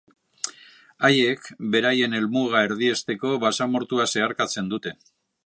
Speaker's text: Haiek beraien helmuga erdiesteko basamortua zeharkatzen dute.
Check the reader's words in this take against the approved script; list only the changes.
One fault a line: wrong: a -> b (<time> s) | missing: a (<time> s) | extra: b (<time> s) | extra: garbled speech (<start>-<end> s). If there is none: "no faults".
no faults